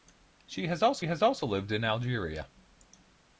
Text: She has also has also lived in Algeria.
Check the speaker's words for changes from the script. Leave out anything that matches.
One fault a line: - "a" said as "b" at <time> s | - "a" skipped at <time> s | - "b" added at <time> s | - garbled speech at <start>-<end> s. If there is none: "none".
none